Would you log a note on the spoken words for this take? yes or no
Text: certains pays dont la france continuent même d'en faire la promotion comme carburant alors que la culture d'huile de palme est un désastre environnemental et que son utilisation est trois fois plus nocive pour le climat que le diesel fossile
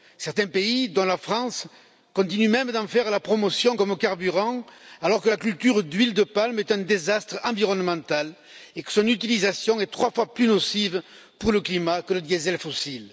no